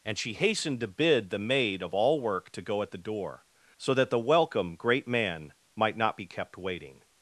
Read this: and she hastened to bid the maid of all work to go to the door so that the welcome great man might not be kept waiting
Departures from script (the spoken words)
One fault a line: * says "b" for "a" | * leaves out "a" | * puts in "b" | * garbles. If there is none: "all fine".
* says "at" for "to"